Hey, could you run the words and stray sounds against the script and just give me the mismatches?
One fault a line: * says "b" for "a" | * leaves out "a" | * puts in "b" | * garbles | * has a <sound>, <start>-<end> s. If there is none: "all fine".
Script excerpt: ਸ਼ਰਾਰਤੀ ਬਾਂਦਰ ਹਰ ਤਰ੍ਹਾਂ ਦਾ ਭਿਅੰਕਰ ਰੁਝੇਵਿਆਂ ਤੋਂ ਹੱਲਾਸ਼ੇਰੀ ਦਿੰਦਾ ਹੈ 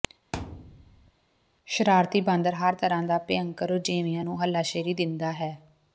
* has a thud, 0.3-1.1 s
* says "ਨੂੰ" for "ਤੋਂ"